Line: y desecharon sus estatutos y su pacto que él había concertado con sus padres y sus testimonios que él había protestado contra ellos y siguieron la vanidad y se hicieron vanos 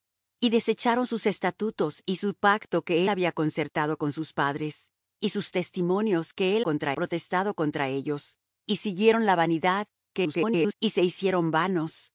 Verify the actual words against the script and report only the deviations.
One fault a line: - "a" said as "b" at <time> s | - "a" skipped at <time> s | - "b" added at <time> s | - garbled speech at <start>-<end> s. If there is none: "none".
- "él" skipped at 3.0 s
- "había" said as "contra" at 6.6 s
- garbled speech at 10.1-10.7 s